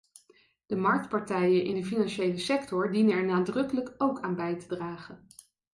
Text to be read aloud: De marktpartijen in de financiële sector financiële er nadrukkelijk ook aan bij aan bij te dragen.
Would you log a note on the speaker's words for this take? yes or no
yes